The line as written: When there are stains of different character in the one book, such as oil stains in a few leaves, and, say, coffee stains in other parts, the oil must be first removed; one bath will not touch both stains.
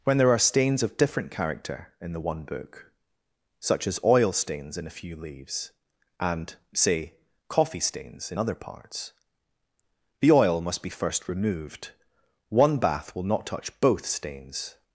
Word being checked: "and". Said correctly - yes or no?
yes